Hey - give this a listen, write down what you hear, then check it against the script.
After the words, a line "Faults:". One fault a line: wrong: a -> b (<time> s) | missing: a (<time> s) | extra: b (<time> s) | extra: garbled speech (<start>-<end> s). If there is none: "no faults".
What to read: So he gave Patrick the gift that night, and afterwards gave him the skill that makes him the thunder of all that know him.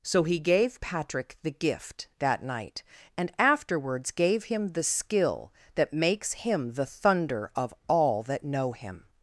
So he gave Patrick the gift that night, and afterwards gave him the skill that makes him the thunder of all that know him.
Faults:
no faults